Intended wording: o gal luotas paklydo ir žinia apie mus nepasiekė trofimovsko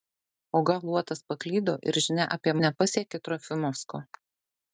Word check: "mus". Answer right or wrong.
wrong